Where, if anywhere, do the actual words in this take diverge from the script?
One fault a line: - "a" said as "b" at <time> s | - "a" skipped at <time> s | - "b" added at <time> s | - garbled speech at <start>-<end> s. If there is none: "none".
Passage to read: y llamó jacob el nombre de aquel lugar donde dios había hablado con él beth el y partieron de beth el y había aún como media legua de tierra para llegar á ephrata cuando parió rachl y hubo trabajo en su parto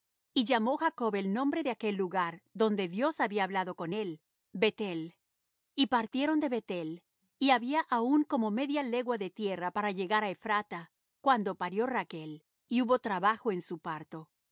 none